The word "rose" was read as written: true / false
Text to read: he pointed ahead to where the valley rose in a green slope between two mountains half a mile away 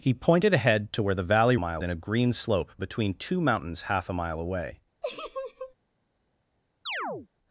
false